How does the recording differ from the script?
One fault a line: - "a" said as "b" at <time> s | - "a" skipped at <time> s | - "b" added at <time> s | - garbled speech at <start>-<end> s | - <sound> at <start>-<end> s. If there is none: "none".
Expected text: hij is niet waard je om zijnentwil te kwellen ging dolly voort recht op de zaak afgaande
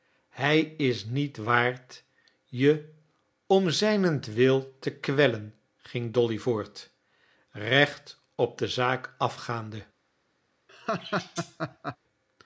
- laugh at 10.7-12.0 s